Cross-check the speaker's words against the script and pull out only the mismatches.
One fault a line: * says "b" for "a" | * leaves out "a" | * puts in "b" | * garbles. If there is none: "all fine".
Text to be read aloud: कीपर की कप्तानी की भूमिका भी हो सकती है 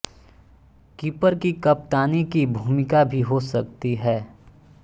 all fine